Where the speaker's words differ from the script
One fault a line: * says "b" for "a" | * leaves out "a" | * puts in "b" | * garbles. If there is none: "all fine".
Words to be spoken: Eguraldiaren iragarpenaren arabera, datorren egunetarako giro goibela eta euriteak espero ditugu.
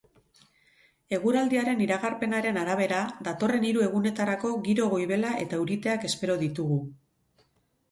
* puts in "hiru"